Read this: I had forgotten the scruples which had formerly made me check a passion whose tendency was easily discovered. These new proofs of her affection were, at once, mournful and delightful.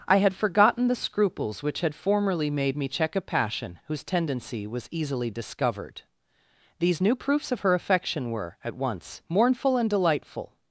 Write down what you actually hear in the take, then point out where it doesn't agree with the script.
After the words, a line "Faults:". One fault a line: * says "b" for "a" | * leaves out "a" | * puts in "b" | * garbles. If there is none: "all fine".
I had forgotten the scruples which had formerly made me check a passion whose tendency was easily discovered. These new proofs of her affection were, at once, mournful and delightful.
Faults:
all fine